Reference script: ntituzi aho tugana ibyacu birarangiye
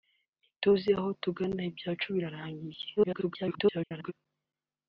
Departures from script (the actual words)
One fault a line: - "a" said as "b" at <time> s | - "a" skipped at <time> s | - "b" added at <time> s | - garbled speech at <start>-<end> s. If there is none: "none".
- garbled speech at 3.0-4.1 s